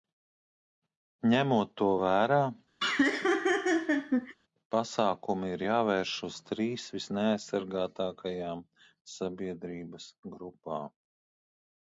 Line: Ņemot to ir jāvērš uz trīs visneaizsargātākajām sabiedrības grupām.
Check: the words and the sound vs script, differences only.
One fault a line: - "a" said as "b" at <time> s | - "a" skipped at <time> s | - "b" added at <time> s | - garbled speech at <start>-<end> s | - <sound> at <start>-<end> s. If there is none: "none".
- "vērā pasākumi" added at 2.0 s
- laugh at 2.8-4.3 s